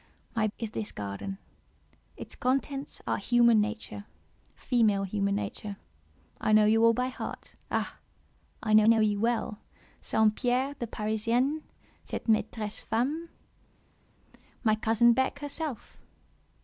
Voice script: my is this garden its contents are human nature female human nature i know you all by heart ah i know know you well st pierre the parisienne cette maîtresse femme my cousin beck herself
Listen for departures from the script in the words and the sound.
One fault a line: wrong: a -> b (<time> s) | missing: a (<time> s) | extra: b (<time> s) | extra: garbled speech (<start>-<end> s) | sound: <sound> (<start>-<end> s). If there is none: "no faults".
no faults